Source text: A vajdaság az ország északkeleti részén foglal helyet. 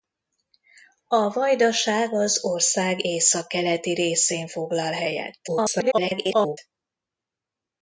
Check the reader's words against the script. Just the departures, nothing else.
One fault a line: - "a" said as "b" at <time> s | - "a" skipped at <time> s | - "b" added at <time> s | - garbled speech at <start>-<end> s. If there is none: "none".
- garbled speech at 5.5-6.6 s